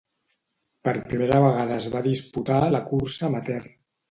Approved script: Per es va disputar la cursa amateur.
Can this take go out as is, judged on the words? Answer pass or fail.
fail